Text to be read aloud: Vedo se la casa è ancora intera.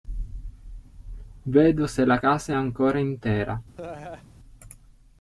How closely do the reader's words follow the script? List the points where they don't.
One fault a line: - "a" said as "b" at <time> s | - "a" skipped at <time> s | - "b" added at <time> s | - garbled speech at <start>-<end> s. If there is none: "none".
none